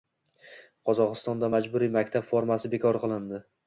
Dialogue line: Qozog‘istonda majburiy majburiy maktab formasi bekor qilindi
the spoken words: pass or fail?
fail